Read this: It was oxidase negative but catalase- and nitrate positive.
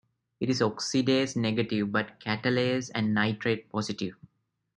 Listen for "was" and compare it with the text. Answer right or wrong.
wrong